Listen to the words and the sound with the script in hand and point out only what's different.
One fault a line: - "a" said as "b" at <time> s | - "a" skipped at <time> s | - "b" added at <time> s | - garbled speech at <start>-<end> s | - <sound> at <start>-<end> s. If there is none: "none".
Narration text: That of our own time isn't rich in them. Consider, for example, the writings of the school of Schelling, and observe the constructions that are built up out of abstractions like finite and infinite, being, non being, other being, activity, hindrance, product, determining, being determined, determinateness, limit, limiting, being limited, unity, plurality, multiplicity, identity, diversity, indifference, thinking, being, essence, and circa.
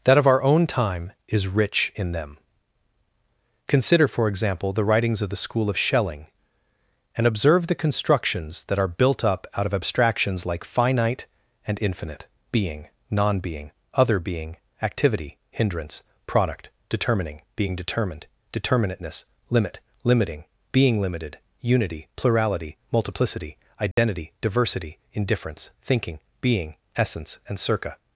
- "isn't" said as "is" at 1.3 s
- dropout at 23.9-24.0 s